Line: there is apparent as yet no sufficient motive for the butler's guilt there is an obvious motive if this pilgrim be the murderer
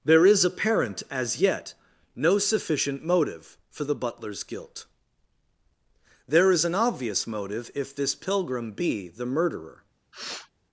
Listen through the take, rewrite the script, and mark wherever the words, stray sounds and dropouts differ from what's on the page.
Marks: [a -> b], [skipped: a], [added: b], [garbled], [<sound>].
there is apparent as yet no sufficient motive for the butler's guilt there is an obvious motive if this pilgrim be the murderer [sniff]